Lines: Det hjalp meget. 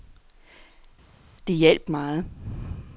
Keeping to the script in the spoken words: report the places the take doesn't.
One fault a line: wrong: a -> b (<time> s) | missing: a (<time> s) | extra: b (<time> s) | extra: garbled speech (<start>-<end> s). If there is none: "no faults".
no faults